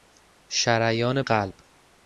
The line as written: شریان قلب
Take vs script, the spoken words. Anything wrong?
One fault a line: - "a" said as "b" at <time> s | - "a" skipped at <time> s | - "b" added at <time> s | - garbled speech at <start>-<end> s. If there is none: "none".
none